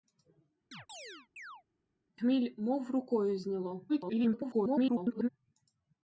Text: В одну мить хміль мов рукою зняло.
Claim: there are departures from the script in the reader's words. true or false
true